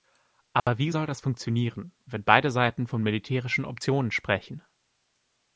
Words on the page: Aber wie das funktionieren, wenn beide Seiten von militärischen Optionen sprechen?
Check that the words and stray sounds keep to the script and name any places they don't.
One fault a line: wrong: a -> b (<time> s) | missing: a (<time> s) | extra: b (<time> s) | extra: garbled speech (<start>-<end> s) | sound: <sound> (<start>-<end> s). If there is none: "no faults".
sound: dropout (0.6-0.7 s)
extra: soll (0.9 s)